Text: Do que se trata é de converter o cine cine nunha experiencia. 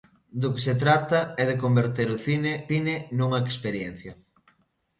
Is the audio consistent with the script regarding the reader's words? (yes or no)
yes